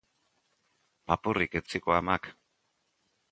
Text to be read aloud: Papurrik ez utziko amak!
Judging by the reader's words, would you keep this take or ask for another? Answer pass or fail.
pass